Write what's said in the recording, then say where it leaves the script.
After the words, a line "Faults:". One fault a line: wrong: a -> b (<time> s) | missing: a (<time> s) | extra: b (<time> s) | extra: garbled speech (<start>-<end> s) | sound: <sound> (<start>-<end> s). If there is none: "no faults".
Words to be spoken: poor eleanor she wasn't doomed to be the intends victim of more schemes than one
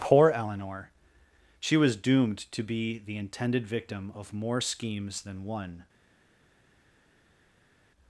poor eleanor she was doomed to be the intended victim of more schemes than one
Faults:
wrong: wasn't -> was (1.8 s)
wrong: intends -> intended (3.1 s)